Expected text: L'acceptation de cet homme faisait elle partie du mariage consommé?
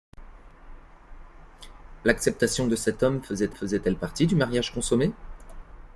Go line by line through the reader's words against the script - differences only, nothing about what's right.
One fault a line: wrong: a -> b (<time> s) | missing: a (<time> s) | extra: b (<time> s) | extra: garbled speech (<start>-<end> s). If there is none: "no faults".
extra: faisait (3.5 s)